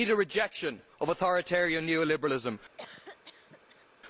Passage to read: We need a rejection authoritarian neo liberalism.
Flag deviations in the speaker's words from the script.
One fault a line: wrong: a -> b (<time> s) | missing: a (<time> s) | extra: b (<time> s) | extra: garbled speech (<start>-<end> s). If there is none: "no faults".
extra: of (1.0 s)